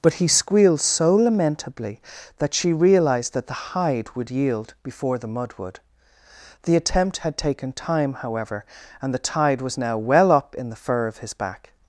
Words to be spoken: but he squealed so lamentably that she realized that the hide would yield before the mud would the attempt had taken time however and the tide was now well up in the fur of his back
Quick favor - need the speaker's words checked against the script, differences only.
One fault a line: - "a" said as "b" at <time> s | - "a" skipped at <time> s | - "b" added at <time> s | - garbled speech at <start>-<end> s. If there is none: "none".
none